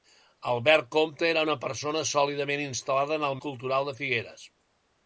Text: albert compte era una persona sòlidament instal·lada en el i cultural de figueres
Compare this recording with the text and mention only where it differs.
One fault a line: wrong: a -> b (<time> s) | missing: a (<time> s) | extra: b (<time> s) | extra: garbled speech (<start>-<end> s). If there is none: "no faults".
no faults